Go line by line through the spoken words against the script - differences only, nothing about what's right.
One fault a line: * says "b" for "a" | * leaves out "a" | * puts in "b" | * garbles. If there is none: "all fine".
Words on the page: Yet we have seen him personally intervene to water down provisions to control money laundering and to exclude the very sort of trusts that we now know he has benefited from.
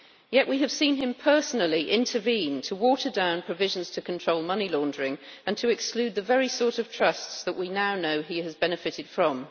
all fine